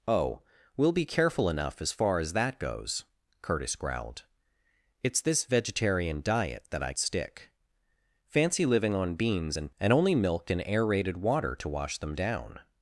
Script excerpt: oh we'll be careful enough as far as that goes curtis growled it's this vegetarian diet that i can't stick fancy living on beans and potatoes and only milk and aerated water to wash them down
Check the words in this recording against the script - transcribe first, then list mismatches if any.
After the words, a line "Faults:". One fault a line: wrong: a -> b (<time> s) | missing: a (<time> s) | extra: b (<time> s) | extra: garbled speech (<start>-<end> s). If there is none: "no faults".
oh we'll be careful enough as far as that goes curtis growled it's this vegetarian diet that i stick fancy living on beans and and only milk and aerated water to wash them down
Faults:
missing: can't (6.9 s)
missing: potatoes (9.7 s)